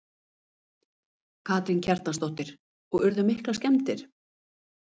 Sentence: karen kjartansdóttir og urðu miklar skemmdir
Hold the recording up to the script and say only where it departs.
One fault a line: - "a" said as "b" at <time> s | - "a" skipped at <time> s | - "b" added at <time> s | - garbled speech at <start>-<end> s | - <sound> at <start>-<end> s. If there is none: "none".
none